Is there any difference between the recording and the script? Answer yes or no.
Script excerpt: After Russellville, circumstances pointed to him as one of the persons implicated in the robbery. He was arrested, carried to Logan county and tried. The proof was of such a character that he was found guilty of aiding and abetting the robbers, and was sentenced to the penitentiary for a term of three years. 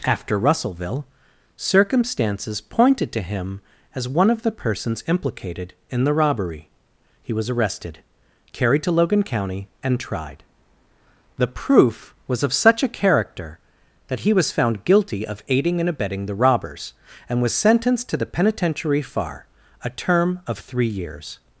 yes